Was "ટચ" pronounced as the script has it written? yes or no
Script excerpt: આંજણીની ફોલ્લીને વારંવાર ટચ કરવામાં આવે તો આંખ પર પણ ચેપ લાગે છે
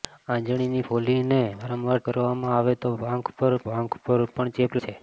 no